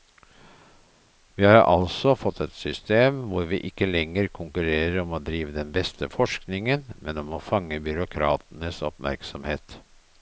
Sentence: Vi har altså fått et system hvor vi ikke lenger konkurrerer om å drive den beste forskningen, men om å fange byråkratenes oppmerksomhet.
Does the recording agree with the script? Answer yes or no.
yes